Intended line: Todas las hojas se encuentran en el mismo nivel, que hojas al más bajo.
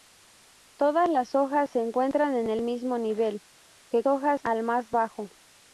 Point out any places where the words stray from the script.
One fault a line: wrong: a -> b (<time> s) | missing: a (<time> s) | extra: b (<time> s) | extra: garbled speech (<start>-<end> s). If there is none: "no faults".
no faults